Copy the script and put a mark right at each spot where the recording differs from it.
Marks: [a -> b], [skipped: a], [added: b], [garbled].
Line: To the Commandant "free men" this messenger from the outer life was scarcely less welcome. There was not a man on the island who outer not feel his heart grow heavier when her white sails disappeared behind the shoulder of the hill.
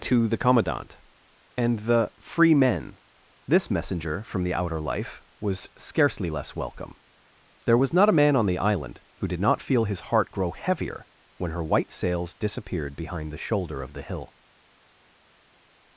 To the Commandant [added: and the] "free men" this messenger from the outer life was scarcely less welcome. There was not a man on the island who [outer -> did] not feel his heart grow heavier when her white sails disappeared behind the shoulder of the hill.